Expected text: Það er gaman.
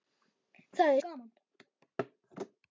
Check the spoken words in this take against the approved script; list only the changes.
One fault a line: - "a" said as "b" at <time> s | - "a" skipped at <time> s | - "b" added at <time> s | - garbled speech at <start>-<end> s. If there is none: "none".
none